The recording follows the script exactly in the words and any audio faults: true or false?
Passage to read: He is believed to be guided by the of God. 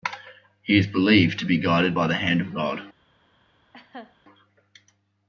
false